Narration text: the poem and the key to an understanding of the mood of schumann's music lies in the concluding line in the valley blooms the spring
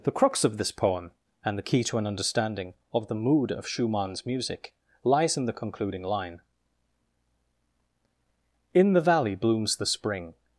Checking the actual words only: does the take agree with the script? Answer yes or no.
no